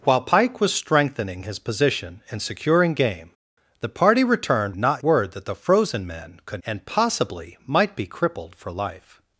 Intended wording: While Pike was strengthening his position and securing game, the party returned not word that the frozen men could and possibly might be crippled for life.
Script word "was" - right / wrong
right